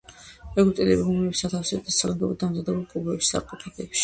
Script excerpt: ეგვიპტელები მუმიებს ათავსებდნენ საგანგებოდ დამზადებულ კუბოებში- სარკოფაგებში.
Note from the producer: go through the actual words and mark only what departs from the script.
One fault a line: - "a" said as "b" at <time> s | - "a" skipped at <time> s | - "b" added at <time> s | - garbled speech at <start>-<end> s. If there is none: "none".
none